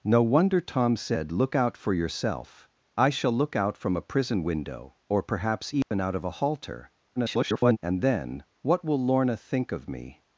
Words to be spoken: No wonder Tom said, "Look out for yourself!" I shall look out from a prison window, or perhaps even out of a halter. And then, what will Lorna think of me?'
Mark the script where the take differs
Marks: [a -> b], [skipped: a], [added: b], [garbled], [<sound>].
No wonder Tom said, "Look out for yourself!" I shall look out from a prison window, or perhaps even [dropout] out of a halter. [garbled] And then, what will Lorna think of me?'